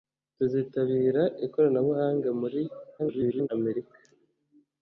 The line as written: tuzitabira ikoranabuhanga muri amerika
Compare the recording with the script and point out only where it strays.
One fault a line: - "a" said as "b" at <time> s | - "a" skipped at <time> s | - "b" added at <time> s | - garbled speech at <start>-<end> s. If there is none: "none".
- garbled speech at 3.0-3.5 s